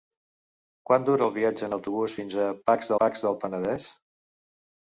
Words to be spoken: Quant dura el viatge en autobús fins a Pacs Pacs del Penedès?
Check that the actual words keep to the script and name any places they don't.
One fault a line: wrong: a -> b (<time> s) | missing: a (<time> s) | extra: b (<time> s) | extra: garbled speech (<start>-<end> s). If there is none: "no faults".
no faults